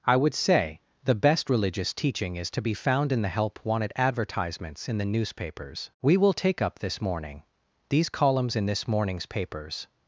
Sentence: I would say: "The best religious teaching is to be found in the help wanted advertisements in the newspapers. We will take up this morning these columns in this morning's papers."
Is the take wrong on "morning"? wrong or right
right